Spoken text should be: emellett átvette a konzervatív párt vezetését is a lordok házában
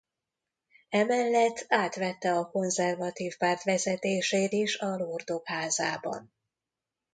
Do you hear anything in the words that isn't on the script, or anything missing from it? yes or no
no